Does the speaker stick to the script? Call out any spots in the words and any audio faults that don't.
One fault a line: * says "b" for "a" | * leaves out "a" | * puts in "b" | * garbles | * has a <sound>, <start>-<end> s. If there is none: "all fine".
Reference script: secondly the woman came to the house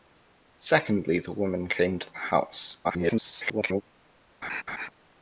* garbles
* has a laugh, 4.4-4.9 s